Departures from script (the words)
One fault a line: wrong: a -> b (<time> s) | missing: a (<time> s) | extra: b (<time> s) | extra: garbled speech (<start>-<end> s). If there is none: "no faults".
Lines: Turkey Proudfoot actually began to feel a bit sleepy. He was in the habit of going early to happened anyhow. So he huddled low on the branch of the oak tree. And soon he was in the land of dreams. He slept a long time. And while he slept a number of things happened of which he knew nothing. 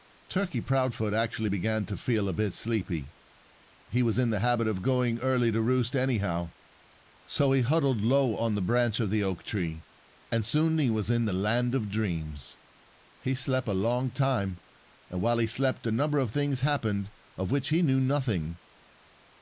wrong: happened -> roost (5.6 s)